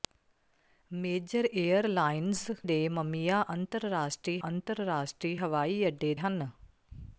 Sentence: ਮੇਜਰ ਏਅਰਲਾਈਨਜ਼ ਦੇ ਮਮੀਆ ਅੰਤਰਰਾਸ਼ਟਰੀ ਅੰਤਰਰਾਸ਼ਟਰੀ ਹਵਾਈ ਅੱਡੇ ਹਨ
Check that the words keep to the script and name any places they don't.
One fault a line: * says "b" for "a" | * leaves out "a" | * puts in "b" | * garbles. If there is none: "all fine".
all fine